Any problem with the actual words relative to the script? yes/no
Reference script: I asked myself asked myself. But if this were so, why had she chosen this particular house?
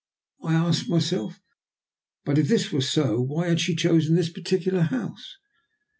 yes